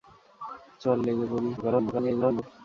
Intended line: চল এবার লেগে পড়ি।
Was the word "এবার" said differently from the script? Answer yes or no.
yes